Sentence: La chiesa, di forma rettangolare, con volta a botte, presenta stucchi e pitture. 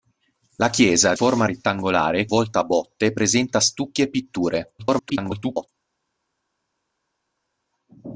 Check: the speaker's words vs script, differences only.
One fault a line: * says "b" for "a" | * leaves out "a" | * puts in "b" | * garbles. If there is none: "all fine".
* leaves out "di"
* leaves out "con"
* garbles